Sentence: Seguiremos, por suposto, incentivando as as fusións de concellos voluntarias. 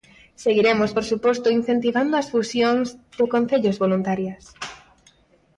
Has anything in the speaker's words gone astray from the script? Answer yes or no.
yes